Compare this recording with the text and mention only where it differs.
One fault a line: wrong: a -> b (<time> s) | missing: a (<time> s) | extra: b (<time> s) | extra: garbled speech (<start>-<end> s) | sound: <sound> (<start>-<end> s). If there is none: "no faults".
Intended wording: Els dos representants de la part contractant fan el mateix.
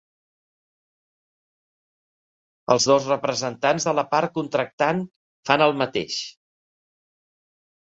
no faults